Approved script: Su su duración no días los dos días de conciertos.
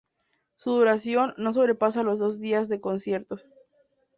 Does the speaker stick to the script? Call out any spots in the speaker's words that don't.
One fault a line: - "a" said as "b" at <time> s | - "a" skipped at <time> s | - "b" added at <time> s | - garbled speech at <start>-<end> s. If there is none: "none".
- "su" skipped at 0.7 s
- "días" said as "sobrepasa" at 1.5 s